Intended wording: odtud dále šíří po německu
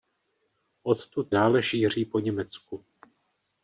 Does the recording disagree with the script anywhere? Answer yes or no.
no